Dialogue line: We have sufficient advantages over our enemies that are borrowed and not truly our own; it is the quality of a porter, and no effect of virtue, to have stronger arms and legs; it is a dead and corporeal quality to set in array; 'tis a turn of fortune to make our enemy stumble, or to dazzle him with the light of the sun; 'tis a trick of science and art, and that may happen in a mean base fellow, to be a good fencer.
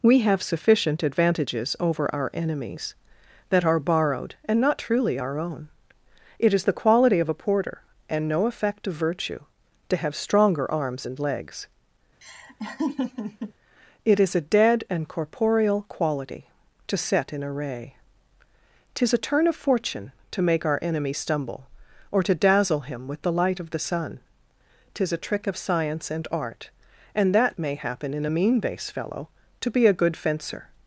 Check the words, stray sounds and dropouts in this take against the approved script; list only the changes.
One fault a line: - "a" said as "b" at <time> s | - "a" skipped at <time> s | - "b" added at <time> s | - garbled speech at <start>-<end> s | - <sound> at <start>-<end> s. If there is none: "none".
- laugh at 12.2-13.5 s